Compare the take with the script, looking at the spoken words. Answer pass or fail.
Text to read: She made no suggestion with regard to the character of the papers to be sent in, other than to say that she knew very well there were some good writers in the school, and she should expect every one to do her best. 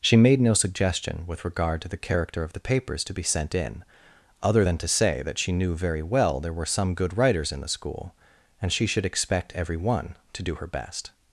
pass